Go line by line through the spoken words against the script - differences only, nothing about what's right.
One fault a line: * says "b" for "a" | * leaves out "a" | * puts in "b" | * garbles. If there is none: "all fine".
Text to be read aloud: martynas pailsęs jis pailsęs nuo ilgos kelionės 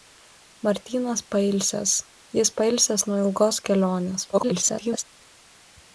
* garbles